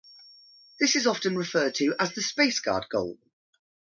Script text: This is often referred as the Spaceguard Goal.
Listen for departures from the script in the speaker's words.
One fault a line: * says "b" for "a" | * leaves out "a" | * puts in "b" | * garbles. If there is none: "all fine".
* puts in "to"